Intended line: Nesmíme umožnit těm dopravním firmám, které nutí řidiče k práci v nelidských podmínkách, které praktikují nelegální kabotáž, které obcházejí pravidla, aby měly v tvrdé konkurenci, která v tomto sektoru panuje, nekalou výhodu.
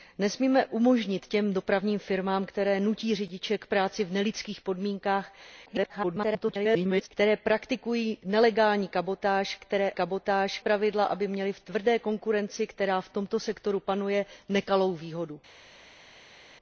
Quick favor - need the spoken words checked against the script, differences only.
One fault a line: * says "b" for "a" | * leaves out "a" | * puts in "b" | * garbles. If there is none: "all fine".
* garbles
* says "kabotáž" for "obcházejí"